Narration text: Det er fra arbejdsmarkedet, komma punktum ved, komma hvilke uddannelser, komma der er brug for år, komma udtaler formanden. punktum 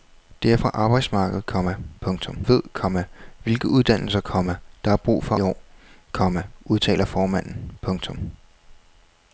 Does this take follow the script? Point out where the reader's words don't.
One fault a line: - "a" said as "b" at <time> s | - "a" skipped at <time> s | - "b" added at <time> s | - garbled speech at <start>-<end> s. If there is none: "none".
none